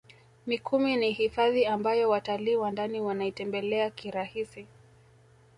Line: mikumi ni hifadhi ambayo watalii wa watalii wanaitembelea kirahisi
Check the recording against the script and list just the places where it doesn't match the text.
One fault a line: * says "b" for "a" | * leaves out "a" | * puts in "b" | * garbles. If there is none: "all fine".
* says "ndani" for "watalii"